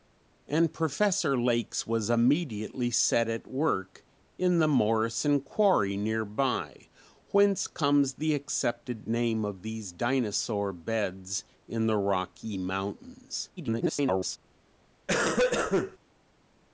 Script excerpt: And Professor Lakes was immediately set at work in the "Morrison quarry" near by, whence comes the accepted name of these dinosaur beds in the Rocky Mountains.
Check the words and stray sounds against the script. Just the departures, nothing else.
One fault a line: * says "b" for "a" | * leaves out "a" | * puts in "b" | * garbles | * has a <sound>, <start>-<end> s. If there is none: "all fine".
* garbles
* has a cough, 15.1-16.0 s